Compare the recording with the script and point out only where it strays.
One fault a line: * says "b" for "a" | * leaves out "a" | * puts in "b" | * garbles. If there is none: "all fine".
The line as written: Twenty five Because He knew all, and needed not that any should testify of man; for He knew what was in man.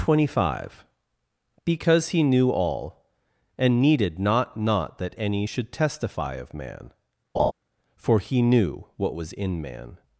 * puts in "not"